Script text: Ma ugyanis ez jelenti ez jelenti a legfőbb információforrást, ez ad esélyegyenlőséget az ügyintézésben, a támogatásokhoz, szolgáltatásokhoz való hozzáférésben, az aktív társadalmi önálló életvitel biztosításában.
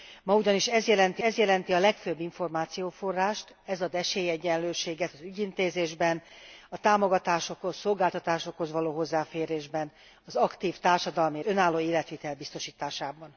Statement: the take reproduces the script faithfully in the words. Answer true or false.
true